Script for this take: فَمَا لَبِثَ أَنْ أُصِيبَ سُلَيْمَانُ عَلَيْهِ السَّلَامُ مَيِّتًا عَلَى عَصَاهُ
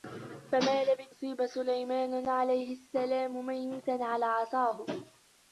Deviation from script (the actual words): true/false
true